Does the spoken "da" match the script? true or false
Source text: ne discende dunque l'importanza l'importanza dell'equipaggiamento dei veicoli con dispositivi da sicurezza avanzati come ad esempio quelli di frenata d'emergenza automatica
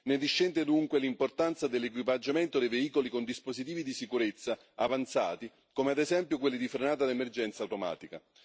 false